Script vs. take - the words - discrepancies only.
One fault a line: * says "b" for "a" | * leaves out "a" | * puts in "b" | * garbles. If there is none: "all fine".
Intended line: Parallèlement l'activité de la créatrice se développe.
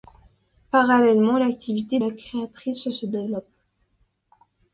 * leaves out "de"